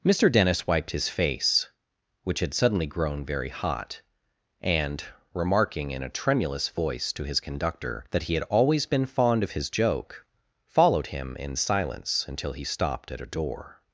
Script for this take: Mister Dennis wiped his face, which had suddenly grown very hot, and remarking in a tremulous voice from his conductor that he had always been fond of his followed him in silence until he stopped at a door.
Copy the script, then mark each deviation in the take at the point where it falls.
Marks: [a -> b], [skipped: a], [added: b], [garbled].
Mister Dennis wiped his face, which had suddenly grown very hot, and remarking in a tremulous voice [from -> to] his conductor that he had always been fond of his [added: joke] followed him in silence until he stopped at a door.